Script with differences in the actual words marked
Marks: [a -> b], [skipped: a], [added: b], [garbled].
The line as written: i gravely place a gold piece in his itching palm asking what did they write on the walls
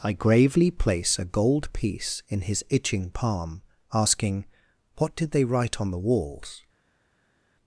i gravely place a gold piece in his itching palm asking what did they write on the walls